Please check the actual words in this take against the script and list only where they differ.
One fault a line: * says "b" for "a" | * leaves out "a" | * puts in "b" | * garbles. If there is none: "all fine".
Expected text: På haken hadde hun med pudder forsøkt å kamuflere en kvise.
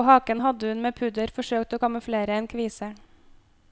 all fine